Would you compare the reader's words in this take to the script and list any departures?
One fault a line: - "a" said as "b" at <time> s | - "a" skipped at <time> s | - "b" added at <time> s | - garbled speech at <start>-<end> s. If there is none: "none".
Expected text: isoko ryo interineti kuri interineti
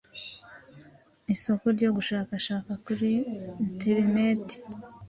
- "interineti" said as "gushakashaka" at 2.0 s